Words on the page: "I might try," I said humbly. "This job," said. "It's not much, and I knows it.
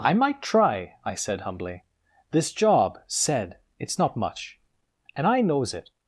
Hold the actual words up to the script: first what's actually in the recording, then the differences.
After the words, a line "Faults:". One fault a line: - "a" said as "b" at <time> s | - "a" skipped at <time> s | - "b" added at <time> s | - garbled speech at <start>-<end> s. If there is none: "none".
"I might try," I said humbly. "This job," said. "It's not much, and I knows it.
Faults:
none